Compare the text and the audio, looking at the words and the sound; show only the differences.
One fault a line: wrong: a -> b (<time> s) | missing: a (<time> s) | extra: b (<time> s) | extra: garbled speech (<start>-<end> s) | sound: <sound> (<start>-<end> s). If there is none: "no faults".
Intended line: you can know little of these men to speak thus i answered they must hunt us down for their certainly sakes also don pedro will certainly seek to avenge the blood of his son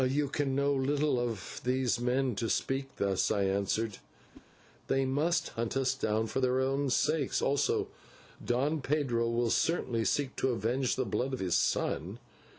sound: whoosh (4.3-4.5 s)
wrong: certainly -> own (6.6 s)